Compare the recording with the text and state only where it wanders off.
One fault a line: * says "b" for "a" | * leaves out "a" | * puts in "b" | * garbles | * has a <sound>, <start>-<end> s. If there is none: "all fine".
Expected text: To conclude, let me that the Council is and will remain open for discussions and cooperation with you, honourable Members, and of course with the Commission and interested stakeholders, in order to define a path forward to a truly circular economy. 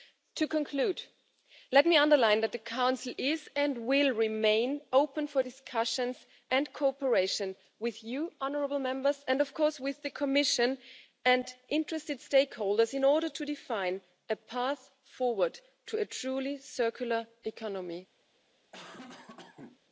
* puts in "underline"
* has a cough, 18.7-19.8 s